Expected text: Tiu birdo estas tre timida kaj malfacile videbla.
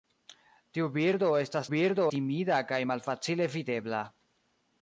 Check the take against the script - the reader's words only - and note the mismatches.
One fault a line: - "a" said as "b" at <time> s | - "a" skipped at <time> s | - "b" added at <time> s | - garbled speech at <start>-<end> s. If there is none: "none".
- "tre" said as "birdo" at 1.7 s